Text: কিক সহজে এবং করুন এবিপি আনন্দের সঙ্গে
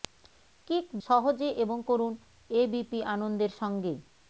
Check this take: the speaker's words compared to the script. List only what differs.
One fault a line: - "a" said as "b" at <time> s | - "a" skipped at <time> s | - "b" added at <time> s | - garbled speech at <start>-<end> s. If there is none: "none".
none